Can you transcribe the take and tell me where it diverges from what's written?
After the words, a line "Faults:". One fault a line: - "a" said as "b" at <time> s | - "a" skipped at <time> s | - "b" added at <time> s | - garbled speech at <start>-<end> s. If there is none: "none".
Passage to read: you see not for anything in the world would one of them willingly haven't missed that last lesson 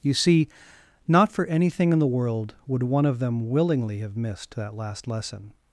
you see not for anything in the world would one of them willingly have missed that last lesson
Faults:
- "haven't" said as "have" at 4.0 s